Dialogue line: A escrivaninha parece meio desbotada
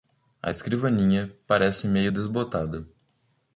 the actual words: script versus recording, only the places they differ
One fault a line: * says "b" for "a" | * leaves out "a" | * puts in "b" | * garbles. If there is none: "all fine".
all fine